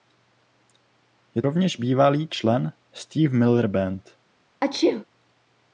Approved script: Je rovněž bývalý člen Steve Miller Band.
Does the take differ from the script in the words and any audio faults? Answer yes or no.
yes